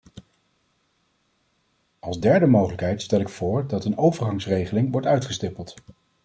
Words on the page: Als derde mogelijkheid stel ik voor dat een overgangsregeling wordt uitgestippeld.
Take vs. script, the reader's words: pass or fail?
pass